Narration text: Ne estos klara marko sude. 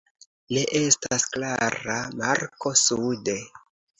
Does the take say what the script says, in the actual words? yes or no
no